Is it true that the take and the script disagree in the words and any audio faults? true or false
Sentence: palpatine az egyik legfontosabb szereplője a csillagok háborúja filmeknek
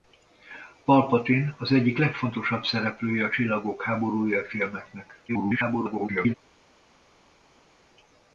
true